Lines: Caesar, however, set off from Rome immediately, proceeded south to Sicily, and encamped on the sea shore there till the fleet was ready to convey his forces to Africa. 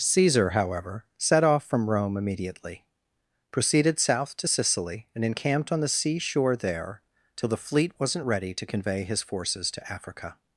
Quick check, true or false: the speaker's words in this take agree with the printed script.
false